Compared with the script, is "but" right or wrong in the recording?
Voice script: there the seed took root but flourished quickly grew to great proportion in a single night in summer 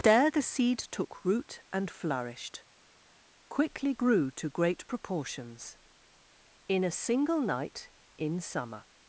wrong